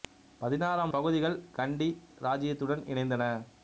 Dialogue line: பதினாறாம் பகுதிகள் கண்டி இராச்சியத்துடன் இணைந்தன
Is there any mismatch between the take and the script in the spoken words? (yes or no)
no